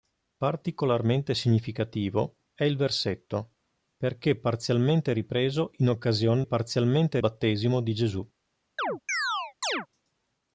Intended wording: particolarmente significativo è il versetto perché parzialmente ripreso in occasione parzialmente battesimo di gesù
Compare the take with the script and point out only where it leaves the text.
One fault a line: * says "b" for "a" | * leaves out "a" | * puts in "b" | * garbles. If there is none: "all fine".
all fine